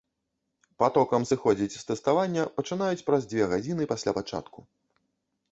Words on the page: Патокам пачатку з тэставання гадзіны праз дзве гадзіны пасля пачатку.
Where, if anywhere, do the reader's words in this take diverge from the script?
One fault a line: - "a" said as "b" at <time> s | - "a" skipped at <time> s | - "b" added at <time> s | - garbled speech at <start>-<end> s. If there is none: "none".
- "пачатку" said as "сыходзіць" at 1.3 s
- "гадзіны" said as "пачынаюць" at 2.6 s